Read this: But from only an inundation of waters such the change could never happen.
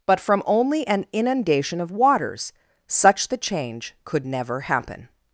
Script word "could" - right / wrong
right